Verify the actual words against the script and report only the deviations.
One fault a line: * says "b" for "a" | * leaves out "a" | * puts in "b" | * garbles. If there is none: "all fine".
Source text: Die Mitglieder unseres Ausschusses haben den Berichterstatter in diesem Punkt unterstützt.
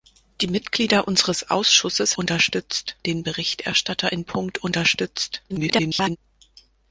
* says "unterstützt" for "haben"
* leaves out "diesem"
* garbles